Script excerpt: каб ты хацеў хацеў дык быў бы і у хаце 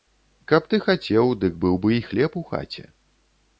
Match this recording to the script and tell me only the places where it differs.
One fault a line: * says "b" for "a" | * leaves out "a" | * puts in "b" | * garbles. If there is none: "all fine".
* leaves out "хацеў"
* puts in "хлеб"